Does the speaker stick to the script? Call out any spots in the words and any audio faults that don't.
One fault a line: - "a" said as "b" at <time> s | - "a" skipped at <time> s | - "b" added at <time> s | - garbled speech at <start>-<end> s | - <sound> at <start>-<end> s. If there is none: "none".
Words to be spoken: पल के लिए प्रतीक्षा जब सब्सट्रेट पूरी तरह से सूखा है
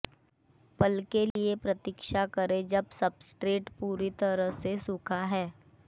- dropout at 1.3-1.4 s
- "करें" added at 2.3 s